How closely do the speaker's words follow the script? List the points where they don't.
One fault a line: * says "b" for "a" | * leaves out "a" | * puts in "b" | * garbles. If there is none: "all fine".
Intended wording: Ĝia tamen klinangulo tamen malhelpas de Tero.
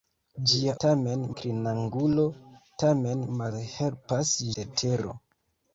all fine